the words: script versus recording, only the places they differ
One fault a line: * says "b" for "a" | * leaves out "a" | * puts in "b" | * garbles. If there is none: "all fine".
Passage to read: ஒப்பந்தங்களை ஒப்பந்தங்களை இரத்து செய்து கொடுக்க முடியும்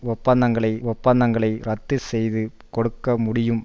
all fine